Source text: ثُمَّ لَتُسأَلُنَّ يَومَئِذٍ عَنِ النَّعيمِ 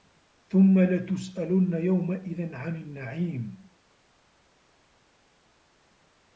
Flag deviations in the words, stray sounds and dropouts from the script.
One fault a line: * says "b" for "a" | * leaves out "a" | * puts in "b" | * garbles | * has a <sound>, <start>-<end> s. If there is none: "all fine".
all fine